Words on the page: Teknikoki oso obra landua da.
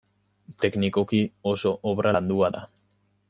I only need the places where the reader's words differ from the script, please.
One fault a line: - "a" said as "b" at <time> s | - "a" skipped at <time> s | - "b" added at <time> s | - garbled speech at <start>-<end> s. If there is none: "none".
none